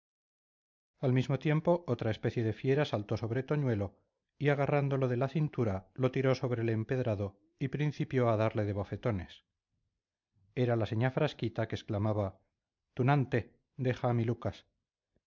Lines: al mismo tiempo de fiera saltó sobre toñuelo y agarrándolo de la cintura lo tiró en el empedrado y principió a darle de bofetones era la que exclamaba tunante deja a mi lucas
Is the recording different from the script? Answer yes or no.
yes